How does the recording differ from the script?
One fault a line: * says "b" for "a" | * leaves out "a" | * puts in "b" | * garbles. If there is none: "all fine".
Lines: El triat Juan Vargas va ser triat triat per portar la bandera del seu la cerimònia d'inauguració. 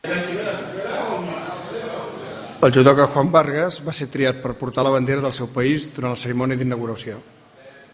* says "judoka" for "triat"
* leaves out "triat"
* puts in "país durant"